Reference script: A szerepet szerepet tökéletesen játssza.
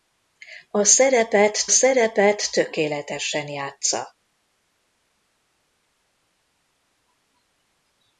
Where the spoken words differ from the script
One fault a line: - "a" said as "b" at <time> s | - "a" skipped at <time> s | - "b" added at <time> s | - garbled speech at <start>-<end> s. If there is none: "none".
none